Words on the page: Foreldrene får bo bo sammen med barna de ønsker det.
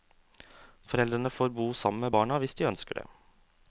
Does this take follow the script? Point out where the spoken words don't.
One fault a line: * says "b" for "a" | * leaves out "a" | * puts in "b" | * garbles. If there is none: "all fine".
* leaves out "bo"
* puts in "hvis"